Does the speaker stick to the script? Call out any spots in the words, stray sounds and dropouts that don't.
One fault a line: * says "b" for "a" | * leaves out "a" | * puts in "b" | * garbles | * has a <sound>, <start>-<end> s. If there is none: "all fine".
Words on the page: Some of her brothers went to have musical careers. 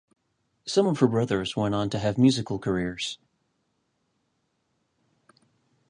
* puts in "on"